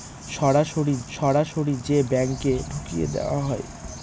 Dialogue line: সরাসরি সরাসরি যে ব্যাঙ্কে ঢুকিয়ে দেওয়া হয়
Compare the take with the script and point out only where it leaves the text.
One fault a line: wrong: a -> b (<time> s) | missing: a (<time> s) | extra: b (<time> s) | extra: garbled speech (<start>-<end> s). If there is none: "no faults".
no faults